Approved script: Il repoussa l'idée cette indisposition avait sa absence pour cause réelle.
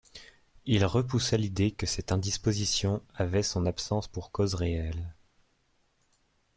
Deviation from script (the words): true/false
true